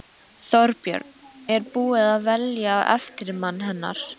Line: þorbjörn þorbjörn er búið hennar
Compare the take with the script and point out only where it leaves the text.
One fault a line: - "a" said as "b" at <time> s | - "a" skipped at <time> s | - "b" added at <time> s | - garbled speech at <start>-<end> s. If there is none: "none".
- "þorbjörn" skipped at 1.1 s
- "að velja eftirmann" added at 2.1 s